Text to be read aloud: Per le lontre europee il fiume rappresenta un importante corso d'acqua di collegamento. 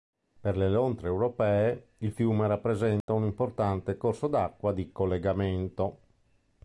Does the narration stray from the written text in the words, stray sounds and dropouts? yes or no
yes